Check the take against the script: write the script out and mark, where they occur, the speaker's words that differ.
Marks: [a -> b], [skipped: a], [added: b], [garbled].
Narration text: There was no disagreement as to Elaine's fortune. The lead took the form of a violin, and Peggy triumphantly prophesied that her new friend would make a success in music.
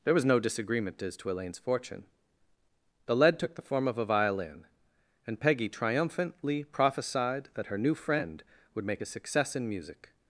There was no disagreement as to Elaine's fortune. The lead took the form of a violin, and Peggy triumphantly prophesied that her new friend would make a success in music.